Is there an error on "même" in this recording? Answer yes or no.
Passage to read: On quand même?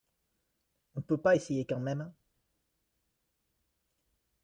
no